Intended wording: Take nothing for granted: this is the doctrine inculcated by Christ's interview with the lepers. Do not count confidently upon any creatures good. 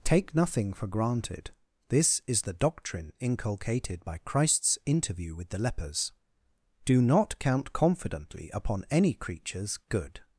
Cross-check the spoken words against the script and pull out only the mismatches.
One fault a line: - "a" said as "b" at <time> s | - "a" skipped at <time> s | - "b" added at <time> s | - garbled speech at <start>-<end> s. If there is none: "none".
none